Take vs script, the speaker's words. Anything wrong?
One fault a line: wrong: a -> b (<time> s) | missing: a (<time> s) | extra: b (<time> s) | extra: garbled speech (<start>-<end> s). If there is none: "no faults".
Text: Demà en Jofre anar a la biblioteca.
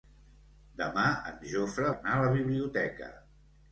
no faults